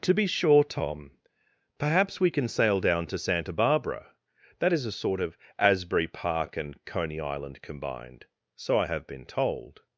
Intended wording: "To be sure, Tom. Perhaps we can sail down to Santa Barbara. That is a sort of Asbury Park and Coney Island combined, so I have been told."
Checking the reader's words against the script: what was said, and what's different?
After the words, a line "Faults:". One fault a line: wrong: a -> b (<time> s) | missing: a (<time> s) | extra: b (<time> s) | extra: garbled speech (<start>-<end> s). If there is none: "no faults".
"To be sure, Tom. Perhaps we can sail down to Santa Barbara. That is a sort of Asbury Park and Coney Island combined, so I have been told."
Faults:
no faults